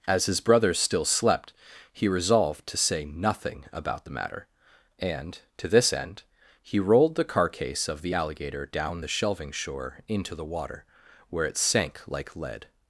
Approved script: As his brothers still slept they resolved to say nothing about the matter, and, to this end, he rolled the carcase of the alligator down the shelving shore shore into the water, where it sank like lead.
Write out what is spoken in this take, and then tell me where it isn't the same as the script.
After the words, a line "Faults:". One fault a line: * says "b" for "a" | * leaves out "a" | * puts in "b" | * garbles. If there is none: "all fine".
As his brothers still slept he resolved to say nothing about the matter, and, to this end, he rolled the carcase of the alligator down the shelving shore into the water, where it sank like lead.
Faults:
* says "he" for "they"
* leaves out "shore"